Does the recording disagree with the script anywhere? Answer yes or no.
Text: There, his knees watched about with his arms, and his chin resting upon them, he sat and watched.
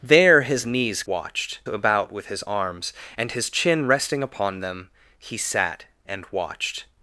no